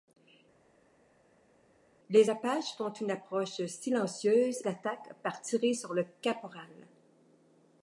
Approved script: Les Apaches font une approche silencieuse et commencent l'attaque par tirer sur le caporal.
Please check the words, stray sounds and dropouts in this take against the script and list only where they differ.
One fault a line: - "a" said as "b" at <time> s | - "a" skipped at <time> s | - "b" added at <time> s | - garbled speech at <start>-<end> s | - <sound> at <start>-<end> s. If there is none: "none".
- "et commencent" skipped at 4.6 s